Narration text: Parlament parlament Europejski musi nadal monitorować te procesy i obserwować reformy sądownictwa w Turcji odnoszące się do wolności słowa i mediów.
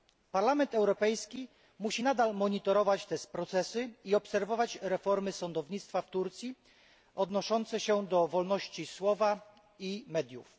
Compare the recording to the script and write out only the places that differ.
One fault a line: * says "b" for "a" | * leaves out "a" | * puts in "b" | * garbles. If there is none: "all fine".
* leaves out "parlament"